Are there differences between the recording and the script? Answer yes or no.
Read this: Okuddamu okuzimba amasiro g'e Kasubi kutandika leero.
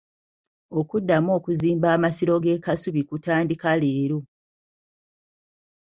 no